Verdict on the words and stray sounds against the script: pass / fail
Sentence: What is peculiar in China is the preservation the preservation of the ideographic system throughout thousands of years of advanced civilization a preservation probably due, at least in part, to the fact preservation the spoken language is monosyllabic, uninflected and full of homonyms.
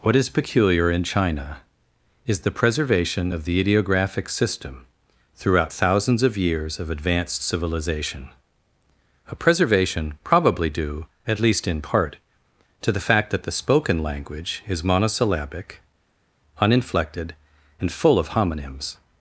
fail